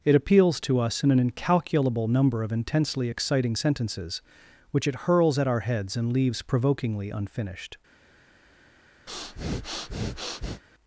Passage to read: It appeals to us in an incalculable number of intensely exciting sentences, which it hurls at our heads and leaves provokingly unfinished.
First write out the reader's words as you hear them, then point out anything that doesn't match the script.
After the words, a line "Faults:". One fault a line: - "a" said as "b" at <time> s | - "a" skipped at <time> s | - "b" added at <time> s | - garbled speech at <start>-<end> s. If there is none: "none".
It appeals to us in an incalculable number of intensely exciting sentences, which it hurls at our heads and leaves provokingly unfinished.
Faults:
none